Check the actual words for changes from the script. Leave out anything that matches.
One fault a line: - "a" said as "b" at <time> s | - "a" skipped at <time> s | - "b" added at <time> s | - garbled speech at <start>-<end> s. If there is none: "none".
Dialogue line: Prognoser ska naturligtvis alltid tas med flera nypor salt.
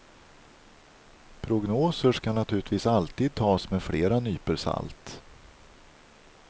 none